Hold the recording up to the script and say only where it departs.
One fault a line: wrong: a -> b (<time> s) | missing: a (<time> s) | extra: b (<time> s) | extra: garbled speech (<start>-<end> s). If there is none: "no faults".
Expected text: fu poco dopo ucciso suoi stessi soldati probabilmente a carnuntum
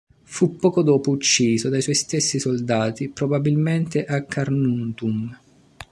extra: dai (1.7 s)